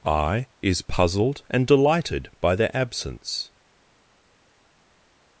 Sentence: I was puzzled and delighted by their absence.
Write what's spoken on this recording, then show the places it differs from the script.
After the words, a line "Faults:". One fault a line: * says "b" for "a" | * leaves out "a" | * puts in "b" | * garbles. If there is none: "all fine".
I is puzzled and delighted by their absence.
Faults:
* says "is" for "was"